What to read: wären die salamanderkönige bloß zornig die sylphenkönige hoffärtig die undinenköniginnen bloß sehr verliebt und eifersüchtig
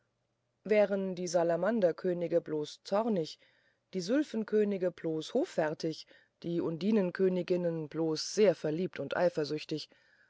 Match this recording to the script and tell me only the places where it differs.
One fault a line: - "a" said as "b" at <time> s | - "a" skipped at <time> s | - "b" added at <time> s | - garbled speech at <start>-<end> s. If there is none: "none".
- "bloß" added at 4.9 s